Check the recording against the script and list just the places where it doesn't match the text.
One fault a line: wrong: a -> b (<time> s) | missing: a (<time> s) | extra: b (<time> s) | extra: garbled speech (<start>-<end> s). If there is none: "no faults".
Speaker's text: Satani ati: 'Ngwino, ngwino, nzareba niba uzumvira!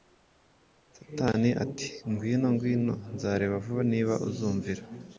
extra: vuba (3.6 s)